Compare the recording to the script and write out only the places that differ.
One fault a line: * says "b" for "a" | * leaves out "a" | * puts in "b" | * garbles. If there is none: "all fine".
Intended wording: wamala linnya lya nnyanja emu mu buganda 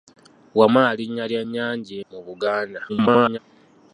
* leaves out "emu"
* garbles